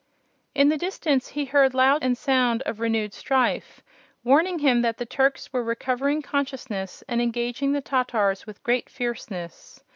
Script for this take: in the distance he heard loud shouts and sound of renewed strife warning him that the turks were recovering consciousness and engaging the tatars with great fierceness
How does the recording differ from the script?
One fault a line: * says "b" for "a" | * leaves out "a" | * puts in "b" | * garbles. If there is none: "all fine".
* leaves out "shouts"